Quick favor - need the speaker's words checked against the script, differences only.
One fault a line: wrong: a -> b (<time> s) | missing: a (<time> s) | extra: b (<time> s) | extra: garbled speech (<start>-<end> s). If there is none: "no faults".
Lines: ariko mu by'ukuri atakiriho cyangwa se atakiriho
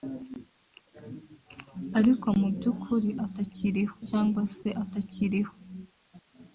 no faults